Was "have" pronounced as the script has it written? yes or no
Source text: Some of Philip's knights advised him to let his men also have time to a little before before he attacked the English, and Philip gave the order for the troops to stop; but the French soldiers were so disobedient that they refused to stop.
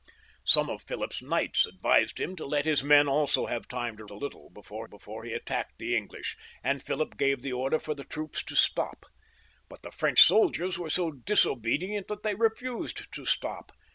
yes